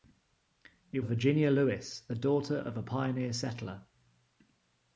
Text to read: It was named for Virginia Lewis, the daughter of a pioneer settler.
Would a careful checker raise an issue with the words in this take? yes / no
yes